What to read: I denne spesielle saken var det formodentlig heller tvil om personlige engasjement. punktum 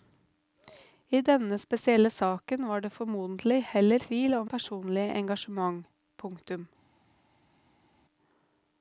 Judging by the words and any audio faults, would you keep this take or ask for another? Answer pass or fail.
pass